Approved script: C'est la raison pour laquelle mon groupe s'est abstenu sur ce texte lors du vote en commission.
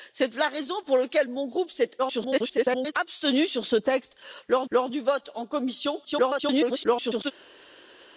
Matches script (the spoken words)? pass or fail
fail